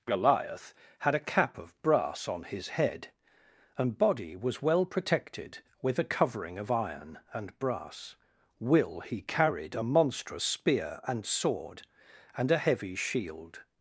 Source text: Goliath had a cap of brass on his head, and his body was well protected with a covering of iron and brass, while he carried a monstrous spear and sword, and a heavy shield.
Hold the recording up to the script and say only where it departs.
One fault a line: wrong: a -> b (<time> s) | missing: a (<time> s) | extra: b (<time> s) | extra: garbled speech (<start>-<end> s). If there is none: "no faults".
missing: his (4.0 s)
wrong: while -> will (8.6 s)